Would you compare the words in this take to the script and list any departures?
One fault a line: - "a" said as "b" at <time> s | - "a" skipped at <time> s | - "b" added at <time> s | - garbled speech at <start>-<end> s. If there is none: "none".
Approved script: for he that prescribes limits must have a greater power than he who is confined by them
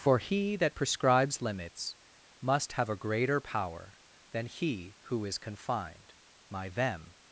- "by" said as "my" at 6.5 s